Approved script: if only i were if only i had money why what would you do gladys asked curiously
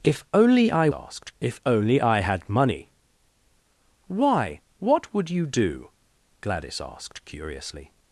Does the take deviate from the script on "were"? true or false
true